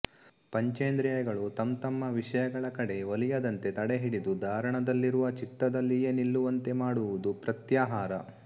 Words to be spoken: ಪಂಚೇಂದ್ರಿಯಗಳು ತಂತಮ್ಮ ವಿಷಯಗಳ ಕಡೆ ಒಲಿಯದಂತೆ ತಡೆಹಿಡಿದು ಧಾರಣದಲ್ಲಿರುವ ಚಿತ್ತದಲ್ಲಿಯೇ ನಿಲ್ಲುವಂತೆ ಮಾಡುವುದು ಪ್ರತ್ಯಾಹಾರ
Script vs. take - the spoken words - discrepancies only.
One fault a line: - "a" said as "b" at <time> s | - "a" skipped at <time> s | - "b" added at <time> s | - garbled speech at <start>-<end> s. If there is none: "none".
none